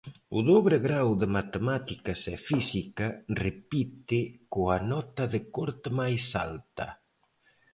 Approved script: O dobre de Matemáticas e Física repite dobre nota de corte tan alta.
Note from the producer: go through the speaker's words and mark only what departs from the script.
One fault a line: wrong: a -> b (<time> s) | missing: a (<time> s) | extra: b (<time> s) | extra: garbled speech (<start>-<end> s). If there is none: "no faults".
extra: grao (0.9 s)
wrong: dobre -> coa (4.5 s)
wrong: tan -> máis (6.0 s)